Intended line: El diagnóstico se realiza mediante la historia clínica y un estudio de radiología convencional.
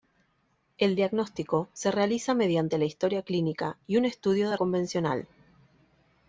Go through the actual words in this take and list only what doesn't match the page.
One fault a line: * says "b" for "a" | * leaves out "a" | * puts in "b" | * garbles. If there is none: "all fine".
* leaves out "radiología"